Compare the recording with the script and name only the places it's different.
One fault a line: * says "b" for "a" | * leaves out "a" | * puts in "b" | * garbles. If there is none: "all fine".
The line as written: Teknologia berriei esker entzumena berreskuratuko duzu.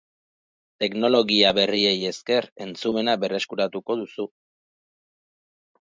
all fine